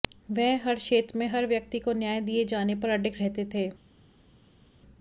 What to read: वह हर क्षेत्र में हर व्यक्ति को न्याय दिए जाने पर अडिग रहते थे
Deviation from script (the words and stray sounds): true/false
false